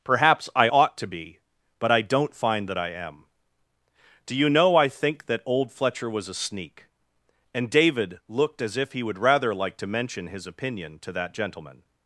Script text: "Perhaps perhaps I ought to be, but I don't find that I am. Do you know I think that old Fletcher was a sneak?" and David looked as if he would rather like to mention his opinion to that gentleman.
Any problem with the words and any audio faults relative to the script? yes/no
yes